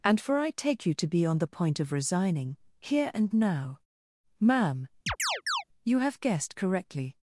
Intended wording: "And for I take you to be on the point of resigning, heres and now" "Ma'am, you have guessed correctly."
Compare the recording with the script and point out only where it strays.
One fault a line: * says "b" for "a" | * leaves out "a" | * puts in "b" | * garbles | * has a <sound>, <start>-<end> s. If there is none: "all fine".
* says "here" for "heres"
* has a chirp, 5.1-5.6 s